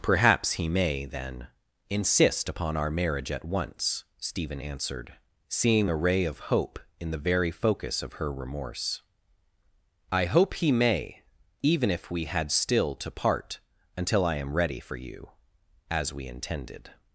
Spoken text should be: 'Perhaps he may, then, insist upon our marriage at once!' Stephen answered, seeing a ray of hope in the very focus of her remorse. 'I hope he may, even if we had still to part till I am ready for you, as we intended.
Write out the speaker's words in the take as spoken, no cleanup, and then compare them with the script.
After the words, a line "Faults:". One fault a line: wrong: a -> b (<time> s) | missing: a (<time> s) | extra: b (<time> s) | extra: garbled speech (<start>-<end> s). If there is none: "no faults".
'Perhaps he may, then, insist upon our marriage at once!' Stephen answered, seeing a ray of hope in the very focus of her remorse. 'I hope he may, even if we had still to part until I am ready for you, as we intended.
Faults:
wrong: till -> until (14.0 s)